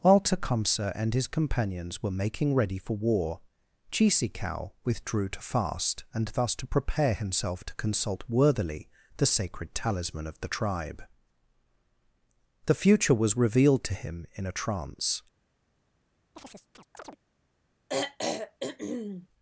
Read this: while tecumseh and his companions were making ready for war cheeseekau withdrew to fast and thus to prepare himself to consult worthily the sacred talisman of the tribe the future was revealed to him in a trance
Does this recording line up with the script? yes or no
yes